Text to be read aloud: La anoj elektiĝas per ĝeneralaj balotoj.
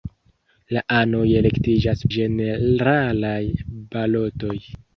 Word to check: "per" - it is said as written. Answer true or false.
false